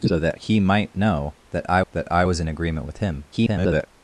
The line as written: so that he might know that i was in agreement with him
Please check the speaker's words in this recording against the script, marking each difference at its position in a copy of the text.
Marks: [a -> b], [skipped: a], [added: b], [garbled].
so that he might know that i [added: that i] was in agreement with him [garbled]